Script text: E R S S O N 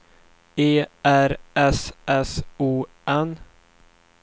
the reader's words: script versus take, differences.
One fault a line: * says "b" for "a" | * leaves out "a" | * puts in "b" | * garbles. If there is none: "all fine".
all fine